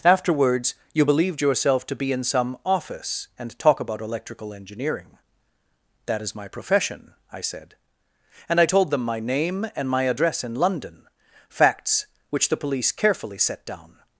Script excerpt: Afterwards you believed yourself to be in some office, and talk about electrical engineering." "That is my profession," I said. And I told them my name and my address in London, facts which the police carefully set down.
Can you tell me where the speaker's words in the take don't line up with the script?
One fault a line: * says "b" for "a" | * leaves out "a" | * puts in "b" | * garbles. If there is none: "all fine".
all fine